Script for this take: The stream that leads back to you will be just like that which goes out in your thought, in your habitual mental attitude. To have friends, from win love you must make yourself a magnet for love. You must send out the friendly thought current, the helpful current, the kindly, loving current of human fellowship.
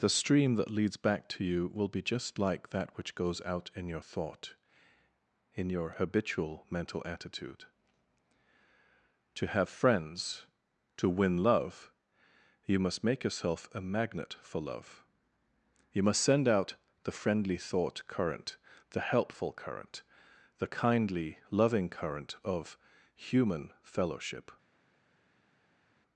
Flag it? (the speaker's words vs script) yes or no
yes